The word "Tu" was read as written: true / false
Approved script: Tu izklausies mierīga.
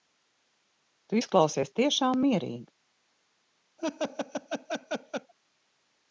true